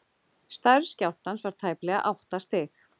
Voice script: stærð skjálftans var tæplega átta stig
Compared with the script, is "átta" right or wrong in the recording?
right